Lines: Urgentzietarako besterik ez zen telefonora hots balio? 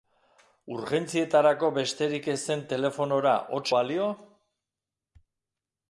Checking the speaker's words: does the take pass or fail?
pass